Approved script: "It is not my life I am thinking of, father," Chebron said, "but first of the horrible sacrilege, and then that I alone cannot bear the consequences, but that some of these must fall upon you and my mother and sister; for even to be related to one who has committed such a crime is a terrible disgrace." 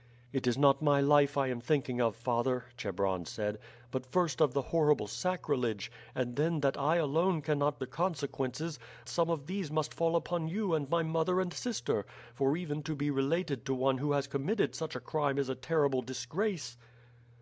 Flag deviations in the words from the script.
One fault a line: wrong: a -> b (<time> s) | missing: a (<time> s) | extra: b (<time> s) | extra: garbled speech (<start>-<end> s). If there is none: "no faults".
missing: bear (7.8 s)
missing: but that (8.8 s)